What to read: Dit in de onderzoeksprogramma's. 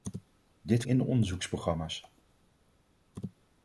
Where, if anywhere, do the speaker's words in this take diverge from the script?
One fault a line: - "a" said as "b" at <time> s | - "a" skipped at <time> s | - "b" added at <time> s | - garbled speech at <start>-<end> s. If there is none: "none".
none